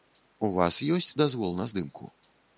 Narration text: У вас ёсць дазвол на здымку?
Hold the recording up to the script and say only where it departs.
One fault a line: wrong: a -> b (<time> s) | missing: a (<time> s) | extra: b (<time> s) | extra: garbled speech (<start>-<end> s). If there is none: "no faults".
no faults